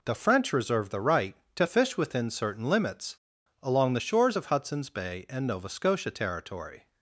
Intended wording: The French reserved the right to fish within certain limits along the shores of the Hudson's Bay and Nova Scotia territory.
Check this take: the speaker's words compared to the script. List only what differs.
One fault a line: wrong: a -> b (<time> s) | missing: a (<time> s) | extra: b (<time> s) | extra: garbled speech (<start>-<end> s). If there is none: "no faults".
missing: the (4.5 s)